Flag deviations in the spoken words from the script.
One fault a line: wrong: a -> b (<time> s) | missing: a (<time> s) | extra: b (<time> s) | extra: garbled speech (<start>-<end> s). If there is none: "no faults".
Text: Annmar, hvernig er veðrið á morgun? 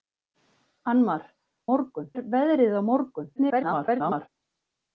wrong: hvernig -> morgun (1.7 s)
extra: garbled speech (3.4-4.3 s)